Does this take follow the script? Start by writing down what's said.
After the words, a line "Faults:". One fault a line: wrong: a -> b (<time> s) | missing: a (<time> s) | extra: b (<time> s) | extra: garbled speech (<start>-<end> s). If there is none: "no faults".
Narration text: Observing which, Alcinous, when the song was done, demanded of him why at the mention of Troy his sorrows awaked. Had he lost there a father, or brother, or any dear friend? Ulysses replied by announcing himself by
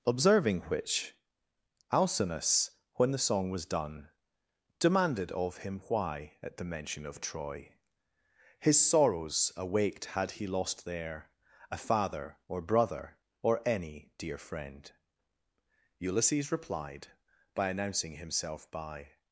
Observing which, Alcinous, when the song was done, demanded of him why at the mention of Troy his sorrows awaked. Had he lost there a father, or brother, or any dear friend? Ulysses replied by announcing himself by
Faults:
no faults